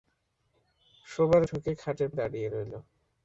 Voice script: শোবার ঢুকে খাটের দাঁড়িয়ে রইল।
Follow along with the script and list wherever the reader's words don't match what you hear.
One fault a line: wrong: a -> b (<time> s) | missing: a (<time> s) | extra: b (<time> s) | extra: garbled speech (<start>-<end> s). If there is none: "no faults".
no faults